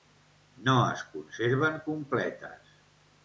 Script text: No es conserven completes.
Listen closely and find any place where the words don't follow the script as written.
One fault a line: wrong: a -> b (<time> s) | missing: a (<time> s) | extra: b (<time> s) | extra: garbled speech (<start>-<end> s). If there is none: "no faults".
no faults